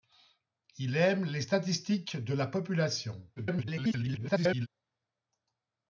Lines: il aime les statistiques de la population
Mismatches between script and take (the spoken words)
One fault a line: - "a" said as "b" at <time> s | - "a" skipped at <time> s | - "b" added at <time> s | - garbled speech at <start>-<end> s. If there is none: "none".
- garbled speech at 3.4-4.7 s